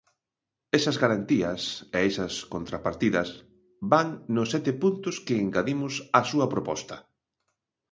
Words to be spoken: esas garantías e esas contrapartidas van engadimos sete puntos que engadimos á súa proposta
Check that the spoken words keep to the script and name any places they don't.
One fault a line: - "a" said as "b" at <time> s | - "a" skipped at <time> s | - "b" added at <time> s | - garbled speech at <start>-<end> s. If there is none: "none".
- "engadimos" said as "nos" at 4.3 s